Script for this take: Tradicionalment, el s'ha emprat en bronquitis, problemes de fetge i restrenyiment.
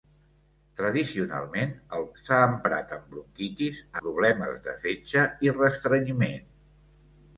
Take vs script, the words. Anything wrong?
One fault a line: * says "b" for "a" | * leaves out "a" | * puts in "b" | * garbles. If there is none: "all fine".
all fine